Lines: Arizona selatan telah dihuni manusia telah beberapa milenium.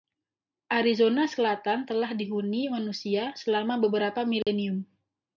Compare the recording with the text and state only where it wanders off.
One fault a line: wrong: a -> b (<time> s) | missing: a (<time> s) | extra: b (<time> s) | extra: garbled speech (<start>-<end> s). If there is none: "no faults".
wrong: telah -> selama (3.4 s)